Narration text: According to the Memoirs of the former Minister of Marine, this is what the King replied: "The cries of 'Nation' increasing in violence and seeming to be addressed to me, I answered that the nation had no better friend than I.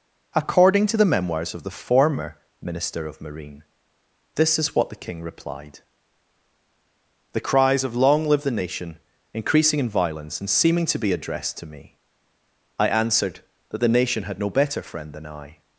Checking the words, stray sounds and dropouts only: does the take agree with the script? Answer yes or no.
no